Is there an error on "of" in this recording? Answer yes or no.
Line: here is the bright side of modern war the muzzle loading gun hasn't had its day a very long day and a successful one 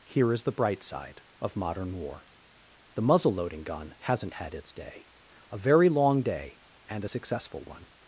no